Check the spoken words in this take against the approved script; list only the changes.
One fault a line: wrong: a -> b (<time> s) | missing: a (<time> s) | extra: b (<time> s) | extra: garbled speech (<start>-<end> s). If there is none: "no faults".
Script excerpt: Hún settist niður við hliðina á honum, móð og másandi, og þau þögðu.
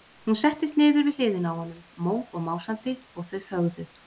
no faults